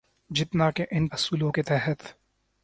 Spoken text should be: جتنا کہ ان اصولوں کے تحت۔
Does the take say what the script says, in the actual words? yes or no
yes